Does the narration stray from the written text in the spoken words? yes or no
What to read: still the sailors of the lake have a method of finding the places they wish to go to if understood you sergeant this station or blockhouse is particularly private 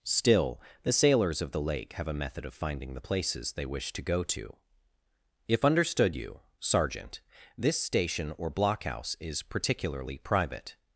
no